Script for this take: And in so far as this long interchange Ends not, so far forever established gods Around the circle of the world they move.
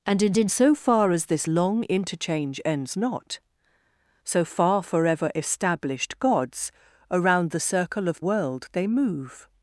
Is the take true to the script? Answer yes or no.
no